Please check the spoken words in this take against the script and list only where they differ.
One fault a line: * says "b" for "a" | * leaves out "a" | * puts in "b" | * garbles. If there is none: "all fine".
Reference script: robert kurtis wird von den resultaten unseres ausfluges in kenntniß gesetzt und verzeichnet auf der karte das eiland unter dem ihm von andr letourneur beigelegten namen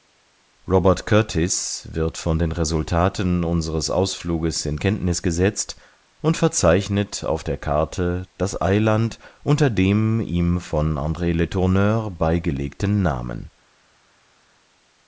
all fine